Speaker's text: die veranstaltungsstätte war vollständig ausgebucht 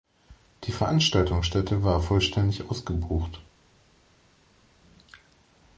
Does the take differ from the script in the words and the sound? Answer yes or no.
no